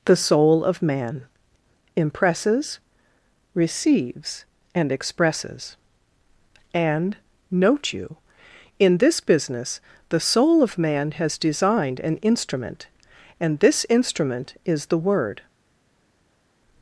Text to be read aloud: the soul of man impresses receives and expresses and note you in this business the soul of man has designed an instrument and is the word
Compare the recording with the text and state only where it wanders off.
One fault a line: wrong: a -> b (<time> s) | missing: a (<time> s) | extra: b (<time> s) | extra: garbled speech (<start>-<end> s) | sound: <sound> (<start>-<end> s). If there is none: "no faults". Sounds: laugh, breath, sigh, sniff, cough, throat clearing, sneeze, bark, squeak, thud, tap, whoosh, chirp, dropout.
extra: this instrument (13.6 s)